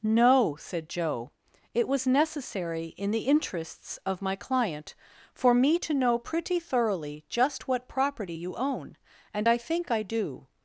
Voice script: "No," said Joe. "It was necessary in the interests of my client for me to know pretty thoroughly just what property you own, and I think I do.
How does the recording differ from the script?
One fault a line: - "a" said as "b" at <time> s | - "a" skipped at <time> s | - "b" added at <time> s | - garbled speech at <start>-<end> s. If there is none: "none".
none